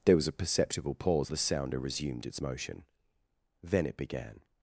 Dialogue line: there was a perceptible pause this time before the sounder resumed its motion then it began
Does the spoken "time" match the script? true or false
false